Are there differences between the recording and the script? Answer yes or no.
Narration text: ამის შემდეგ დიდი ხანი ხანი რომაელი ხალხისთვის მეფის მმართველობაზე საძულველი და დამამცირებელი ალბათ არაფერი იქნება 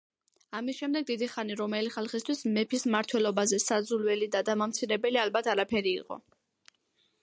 yes